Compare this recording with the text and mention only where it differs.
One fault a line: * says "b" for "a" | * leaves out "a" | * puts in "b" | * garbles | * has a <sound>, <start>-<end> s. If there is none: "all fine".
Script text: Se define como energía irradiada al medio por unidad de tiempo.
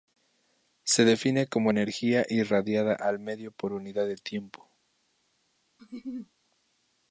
* has a laugh, 5.8-6.3 s